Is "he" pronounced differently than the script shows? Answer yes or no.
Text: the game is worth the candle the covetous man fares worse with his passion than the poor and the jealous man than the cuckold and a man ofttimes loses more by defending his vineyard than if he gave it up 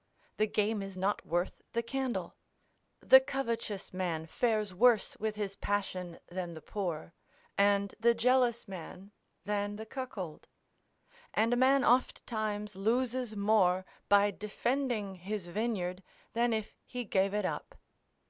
no